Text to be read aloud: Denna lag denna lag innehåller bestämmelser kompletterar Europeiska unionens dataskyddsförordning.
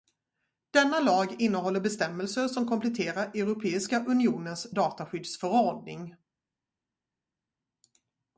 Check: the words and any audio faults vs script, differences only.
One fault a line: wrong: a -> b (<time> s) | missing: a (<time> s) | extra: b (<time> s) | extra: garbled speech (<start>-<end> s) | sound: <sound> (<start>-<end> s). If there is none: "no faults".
missing: denna lag (1.4 s)
extra: som (2.5 s)